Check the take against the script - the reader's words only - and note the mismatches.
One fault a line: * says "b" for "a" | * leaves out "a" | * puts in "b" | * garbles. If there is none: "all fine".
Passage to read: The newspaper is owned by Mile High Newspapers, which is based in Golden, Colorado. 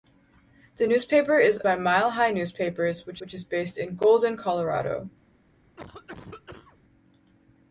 * leaves out "owned"
* puts in "which"